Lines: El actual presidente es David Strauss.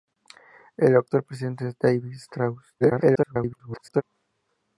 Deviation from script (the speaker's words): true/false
true